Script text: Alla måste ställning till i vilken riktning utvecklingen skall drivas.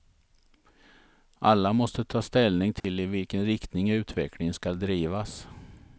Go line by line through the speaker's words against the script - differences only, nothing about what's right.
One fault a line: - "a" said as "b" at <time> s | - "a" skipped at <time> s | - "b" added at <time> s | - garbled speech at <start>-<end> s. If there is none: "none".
- "ta" added at 2.0 s